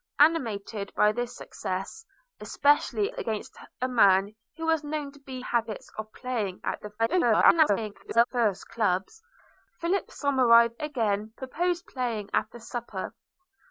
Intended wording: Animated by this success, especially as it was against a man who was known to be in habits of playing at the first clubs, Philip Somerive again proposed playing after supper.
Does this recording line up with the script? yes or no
no